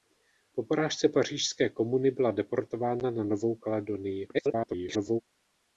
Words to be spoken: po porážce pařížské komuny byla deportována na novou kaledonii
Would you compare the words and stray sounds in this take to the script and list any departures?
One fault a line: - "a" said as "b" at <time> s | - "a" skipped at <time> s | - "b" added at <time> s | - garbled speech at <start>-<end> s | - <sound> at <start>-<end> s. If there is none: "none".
- garbled speech at 4.3-5.2 s